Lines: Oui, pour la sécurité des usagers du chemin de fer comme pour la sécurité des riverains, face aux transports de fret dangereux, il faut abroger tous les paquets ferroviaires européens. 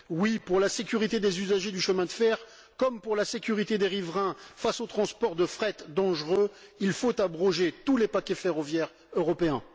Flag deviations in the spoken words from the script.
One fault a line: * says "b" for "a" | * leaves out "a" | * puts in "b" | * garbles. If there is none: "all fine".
all fine